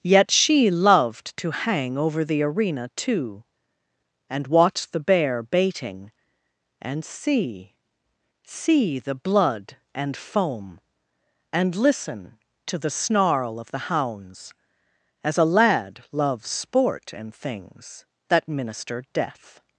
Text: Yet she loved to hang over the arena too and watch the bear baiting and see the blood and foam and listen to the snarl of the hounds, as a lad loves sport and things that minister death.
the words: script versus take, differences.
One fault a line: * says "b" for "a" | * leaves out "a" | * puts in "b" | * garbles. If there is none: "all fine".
* puts in "see"